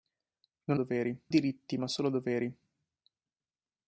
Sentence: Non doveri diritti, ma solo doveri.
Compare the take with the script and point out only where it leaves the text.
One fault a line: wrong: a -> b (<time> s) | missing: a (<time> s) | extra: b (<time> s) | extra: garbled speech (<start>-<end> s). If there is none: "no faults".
no faults